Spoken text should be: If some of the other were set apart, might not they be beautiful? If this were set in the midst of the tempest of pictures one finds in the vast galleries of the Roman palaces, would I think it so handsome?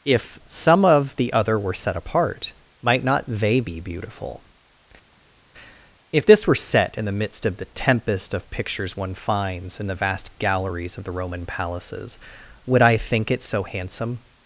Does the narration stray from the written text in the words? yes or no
no